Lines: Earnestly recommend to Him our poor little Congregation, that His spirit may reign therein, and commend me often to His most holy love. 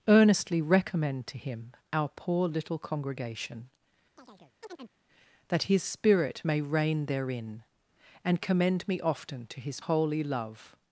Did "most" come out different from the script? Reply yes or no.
yes